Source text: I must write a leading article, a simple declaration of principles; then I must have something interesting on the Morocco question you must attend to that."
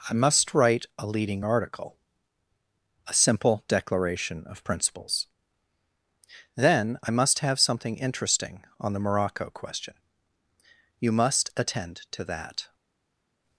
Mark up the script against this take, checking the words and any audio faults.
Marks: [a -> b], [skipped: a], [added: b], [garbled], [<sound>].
I must write a leading article, a simple declaration of principles; then I must have something interesting on the Morocco question you must attend to that."